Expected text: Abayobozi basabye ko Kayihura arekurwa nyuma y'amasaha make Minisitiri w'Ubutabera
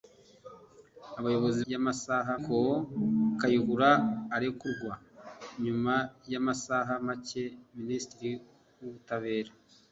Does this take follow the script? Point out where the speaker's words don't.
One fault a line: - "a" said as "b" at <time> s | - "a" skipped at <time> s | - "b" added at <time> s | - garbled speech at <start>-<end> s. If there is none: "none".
- "basabye" said as "y'amasaha" at 1.7 s